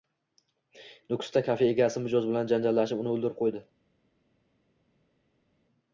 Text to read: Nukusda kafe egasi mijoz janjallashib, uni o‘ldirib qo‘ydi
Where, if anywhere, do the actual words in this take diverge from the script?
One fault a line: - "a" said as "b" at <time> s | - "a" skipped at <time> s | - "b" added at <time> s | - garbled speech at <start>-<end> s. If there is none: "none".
- "bilan" added at 2.3 s